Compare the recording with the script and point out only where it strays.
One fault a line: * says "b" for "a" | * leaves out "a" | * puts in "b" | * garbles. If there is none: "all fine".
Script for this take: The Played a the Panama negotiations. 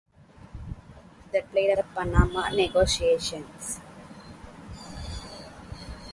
all fine